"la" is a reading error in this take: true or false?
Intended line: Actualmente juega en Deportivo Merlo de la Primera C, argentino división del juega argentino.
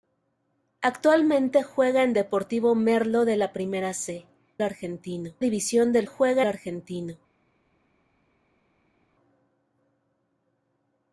false